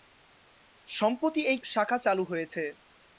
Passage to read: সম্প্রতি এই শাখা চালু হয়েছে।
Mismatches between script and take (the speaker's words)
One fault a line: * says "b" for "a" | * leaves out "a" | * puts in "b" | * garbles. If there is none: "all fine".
all fine